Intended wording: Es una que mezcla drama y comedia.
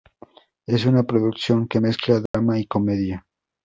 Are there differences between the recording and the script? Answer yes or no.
yes